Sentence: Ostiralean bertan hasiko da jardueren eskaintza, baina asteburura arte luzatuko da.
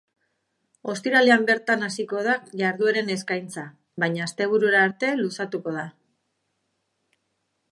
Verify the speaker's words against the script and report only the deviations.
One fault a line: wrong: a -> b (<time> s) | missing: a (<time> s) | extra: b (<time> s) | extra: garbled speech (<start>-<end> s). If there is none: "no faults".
no faults